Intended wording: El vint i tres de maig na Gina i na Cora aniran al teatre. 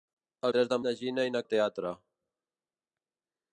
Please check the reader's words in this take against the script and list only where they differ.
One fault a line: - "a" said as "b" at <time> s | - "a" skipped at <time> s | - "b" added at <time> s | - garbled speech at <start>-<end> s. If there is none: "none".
- "vint" skipped at 0.5 s
- "maig" skipped at 0.8 s
- "Cora aniran" skipped at 1.4 s